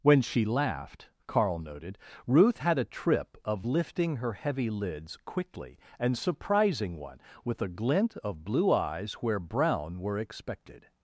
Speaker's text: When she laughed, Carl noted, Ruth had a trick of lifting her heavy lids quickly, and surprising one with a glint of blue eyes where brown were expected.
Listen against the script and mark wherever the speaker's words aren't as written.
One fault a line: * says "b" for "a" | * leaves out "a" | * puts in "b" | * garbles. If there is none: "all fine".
* says "trip" for "trick"